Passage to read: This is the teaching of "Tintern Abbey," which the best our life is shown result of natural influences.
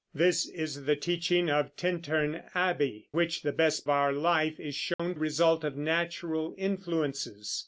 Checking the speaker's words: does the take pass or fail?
pass